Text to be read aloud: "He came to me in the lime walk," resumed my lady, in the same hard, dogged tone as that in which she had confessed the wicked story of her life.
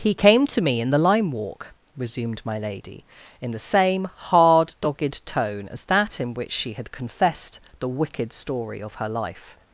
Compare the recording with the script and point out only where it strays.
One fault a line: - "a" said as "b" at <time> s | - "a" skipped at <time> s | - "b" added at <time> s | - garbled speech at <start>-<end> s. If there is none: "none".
none